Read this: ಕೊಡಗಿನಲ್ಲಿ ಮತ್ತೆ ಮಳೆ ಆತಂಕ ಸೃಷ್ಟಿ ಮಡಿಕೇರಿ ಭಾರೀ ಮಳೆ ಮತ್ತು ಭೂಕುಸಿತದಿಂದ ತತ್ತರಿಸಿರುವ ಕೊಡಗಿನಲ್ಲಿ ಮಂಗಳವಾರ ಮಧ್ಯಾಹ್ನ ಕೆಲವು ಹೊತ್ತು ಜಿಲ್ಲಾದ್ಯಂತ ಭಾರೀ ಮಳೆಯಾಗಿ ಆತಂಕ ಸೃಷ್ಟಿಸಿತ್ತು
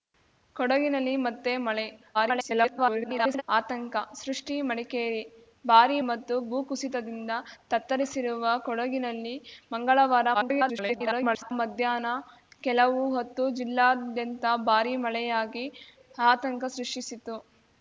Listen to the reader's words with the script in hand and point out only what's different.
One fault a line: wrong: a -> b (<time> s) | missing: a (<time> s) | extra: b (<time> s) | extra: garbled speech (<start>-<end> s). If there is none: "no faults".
extra: garbled speech (2.1-3.4 s)
missing: ಮಳೆ (6.0 s)
extra: garbled speech (10.3-11.5 s)